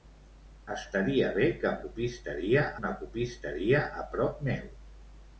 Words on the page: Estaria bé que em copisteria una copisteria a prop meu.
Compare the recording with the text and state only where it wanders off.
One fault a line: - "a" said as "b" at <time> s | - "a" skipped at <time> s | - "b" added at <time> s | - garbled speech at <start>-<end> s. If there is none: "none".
none